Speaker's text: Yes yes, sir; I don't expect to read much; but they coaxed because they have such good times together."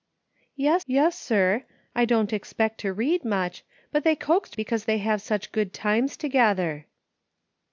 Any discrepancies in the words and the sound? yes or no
no